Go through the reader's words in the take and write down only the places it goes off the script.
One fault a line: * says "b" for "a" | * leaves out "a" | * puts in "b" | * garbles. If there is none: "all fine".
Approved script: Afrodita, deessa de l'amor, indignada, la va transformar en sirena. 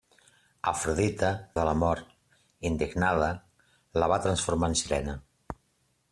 * leaves out "deessa"